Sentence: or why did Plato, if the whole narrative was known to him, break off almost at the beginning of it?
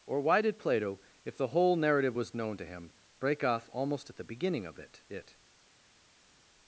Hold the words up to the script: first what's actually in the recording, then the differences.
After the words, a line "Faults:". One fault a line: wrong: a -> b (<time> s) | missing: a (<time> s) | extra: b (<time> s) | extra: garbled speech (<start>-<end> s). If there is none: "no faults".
or why did Plato, if the whole narrative was known to him, break off almost at the beginning of it it?
Faults:
extra: it (5.1 s)